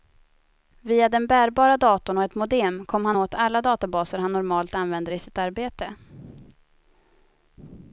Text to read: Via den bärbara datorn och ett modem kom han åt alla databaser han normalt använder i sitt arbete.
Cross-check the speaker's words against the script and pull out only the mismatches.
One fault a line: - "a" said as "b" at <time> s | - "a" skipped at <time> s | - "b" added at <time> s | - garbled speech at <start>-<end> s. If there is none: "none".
none